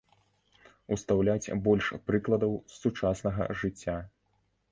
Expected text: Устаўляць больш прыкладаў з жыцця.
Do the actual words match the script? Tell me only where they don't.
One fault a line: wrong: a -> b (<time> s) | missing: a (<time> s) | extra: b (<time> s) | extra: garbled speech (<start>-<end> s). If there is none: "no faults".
extra: сучаснага (2.9 s)